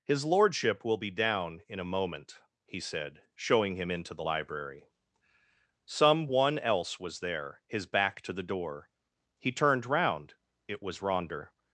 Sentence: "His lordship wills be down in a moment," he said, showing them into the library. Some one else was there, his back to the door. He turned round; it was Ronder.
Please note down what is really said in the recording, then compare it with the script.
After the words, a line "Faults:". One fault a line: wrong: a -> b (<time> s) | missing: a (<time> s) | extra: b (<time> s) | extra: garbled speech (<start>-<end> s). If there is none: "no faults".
"His lordship will be down in a moment," he said, showing him into the library. Some one else was there, his back to the door. He turned round; it was Ronder.
Faults:
wrong: wills -> will (0.8 s)
wrong: them -> him (3.8 s)